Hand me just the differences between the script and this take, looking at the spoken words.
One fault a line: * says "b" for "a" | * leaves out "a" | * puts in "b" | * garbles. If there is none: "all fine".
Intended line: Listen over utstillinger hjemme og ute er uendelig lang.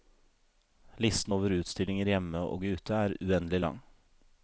all fine